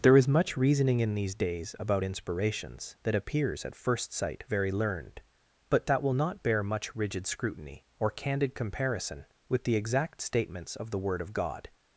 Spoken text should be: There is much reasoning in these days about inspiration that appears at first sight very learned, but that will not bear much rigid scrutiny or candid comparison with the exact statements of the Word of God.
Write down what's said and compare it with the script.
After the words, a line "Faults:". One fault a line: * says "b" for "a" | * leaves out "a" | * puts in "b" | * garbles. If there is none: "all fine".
There is much reasoning in these days about inspirations that appears at first sight very learned, but that will not bear much rigid scrutiny or candid comparison with the exact statements of the Word of God.
Faults:
* says "inspirations" for "inspiration"